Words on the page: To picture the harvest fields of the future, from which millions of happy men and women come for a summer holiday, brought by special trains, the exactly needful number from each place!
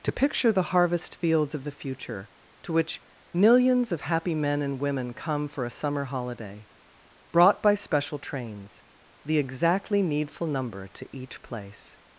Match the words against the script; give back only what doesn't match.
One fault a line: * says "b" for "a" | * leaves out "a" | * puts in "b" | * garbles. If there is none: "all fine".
* says "to" for "from"
* says "to" for "from"